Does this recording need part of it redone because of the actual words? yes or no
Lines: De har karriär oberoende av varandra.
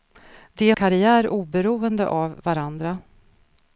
yes